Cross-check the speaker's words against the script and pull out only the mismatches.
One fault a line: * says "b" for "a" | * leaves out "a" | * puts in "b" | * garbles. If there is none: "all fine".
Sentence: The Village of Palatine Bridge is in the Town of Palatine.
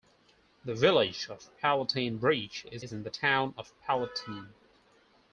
* puts in "is"